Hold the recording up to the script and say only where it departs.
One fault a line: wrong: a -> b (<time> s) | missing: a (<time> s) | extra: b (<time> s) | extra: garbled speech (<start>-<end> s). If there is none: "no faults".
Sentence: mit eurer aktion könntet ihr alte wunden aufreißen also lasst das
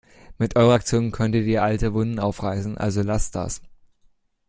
no faults